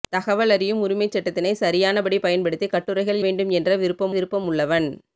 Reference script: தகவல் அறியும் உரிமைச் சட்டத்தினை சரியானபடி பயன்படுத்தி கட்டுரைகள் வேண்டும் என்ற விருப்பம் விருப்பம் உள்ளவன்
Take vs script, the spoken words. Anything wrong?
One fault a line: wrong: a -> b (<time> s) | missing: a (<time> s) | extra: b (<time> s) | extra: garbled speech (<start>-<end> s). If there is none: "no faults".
no faults